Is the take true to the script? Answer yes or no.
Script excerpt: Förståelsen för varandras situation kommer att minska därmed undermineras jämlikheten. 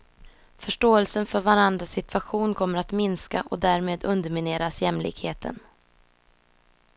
no